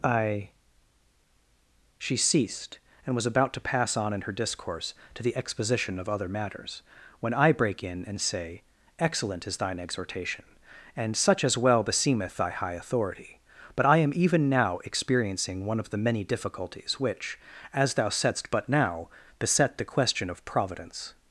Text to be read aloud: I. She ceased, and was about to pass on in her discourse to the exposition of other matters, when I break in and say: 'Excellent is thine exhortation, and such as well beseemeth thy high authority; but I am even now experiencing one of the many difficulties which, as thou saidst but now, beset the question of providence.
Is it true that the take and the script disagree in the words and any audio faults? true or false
false